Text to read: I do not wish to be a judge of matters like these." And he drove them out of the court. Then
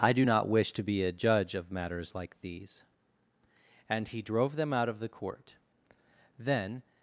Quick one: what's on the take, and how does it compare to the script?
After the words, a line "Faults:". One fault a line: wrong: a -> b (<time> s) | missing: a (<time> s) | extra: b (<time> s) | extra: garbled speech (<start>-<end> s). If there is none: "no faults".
I do not wish to be a judge of matters like these." And he drove them out of the court. Then
Faults:
no faults